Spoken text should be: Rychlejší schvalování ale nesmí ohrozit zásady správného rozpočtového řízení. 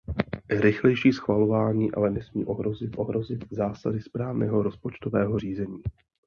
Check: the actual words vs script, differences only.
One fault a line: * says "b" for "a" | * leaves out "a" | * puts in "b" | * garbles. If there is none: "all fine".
* puts in "ohrozit"